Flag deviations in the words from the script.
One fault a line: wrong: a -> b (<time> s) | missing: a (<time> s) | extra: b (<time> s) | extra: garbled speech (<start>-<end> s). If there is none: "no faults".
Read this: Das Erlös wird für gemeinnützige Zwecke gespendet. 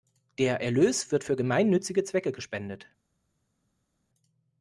wrong: Das -> Der (0.4 s)